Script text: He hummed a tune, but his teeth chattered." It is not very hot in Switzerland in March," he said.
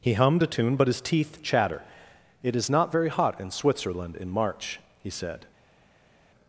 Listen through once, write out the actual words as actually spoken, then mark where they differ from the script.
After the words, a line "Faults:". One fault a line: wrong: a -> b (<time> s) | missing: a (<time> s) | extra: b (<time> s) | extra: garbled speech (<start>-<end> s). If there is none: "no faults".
He hummed a tune, but his teeth chatter." It is not very hot in Switzerland in March," he said.
Faults:
wrong: chattered -> chatter (1.4 s)